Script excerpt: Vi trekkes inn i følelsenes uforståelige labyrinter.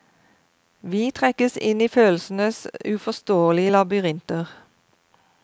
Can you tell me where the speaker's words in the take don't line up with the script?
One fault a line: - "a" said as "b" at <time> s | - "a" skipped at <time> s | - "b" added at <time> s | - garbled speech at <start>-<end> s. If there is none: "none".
none